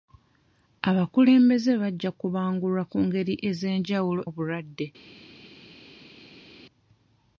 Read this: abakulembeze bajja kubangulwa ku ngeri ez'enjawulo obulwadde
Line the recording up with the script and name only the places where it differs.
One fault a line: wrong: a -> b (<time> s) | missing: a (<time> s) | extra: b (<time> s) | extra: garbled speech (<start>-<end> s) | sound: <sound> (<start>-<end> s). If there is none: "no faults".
no faults